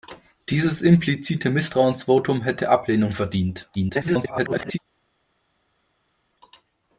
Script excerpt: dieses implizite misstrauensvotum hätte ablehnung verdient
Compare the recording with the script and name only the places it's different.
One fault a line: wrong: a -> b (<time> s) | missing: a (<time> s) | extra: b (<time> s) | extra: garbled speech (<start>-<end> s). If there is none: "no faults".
extra: garbled speech (3.7-4.8 s)